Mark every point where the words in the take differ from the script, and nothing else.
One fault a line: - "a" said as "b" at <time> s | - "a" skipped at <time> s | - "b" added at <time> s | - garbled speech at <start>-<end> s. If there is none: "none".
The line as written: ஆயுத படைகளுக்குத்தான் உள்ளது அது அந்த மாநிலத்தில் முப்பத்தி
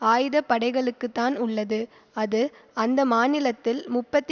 none